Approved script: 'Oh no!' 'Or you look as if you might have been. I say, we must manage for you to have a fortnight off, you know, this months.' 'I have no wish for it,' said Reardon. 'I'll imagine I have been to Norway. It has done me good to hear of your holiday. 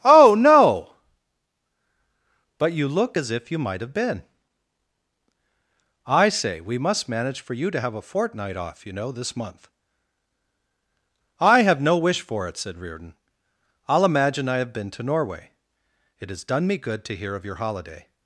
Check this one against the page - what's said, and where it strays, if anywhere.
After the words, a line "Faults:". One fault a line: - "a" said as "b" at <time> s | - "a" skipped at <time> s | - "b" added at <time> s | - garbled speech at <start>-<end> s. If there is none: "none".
'Oh no!' 'But you look as if you might have been. I say, we must manage for you to have a fortnight off, you know, this month.' 'I have no wish for it,' said Reardon. 'I'll imagine I have been to Norway. It has done me good to hear of your holiday.
Faults:
- "Or" said as "But" at 2.6 s
- "months" said as "month" at 9.3 s